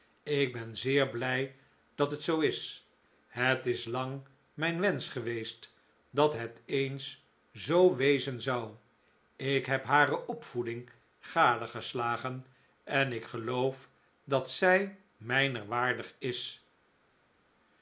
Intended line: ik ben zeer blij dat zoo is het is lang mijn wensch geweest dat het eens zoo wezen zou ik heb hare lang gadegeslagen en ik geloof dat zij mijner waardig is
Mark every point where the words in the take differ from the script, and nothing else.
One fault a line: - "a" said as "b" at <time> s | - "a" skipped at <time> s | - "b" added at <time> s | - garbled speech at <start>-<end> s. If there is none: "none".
- "het" added at 2.1 s
- "lang" said as "opvoeding" at 10.3 s